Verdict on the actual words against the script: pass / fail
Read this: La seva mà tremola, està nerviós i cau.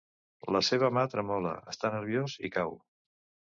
pass